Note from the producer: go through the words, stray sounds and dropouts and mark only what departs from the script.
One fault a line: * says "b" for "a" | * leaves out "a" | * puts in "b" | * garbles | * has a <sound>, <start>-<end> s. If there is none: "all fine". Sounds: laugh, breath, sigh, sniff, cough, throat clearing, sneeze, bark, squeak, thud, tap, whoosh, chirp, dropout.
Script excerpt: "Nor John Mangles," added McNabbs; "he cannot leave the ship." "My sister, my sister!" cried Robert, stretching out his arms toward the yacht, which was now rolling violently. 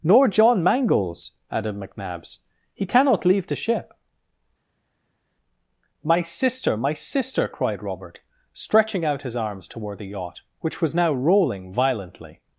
all fine